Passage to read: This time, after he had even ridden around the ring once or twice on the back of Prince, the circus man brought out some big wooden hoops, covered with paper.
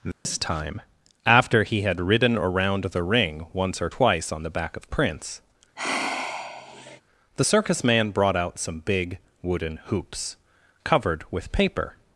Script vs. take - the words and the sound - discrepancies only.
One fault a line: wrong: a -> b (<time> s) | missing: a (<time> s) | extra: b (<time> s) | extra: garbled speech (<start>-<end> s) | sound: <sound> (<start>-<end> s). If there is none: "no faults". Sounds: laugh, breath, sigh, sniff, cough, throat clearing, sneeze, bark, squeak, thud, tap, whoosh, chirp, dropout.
sound: dropout (0.1-0.3 s)
missing: even (2.0 s)
sound: sigh (5.8-7.0 s)